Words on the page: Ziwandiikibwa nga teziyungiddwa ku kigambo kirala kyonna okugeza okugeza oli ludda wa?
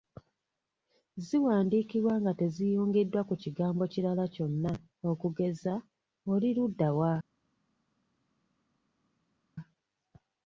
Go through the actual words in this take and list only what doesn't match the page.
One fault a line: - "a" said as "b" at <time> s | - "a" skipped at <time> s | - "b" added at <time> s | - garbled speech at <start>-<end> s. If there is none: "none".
- "okugeza" skipped at 5.7 s